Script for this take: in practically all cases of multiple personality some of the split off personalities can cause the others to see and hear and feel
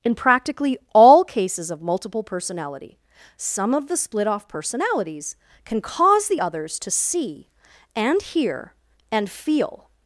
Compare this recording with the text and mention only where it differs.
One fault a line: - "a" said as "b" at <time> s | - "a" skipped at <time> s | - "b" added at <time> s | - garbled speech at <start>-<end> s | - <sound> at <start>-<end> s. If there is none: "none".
none